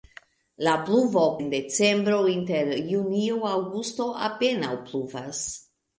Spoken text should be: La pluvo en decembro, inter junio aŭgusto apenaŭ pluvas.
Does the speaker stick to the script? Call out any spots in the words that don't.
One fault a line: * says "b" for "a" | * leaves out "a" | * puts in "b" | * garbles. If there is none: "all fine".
all fine